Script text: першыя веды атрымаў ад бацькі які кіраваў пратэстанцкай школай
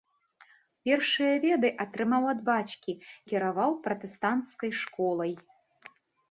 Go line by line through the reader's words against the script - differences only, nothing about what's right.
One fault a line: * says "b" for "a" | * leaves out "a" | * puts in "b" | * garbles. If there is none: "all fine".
* leaves out "які"